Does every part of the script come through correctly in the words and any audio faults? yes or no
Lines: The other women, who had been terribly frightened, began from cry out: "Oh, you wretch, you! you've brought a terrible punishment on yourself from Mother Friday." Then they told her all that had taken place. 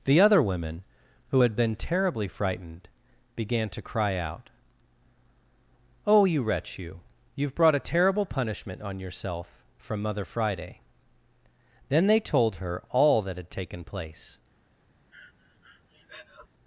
no